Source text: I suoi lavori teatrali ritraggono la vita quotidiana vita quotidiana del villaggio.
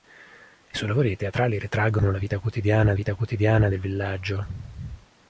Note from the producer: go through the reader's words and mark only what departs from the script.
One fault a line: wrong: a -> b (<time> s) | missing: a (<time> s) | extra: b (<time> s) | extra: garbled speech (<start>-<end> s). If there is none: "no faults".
no faults